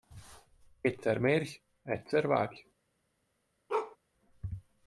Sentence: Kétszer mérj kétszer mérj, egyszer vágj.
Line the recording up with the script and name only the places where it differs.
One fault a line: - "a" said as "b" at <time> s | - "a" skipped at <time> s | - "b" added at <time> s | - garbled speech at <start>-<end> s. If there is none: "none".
- "kétszer mérj" skipped at 1.6 s